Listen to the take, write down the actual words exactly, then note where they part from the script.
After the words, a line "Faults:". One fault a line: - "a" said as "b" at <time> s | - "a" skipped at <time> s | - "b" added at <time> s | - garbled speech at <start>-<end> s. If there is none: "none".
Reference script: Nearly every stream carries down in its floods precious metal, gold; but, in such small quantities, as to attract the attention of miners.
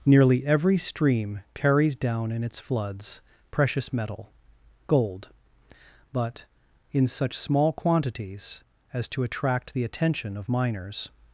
Nearly every stream carries down in its floods precious metal, gold; but, in such small quantities, as to attract the attention of miners.
Faults:
none